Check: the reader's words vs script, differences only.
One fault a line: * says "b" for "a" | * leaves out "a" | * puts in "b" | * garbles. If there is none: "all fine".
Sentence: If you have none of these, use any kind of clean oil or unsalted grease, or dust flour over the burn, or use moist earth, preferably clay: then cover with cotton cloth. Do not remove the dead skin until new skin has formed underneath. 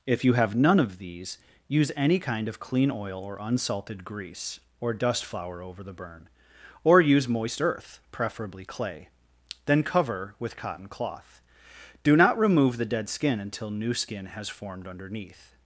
all fine